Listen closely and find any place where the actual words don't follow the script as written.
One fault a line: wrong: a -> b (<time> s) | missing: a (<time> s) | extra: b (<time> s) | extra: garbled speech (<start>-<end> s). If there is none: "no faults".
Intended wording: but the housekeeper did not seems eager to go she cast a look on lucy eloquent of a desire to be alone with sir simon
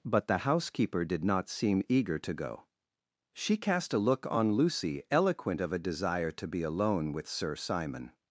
wrong: seems -> seem (1.5 s)